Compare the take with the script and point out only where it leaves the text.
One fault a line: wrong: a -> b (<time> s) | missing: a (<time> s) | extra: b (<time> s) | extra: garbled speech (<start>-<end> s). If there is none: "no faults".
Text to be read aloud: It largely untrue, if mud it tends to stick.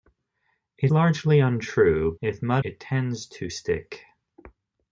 no faults